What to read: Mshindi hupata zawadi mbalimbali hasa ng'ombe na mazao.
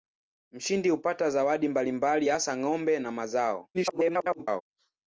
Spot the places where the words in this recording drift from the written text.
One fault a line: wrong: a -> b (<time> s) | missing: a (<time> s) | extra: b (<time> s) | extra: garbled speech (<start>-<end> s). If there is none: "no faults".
extra: garbled speech (3.7-4.6 s)